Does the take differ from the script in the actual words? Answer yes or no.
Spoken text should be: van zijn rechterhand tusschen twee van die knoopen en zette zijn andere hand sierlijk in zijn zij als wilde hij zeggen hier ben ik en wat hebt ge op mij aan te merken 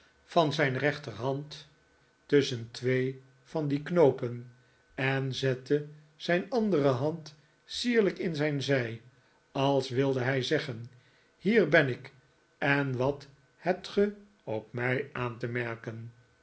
no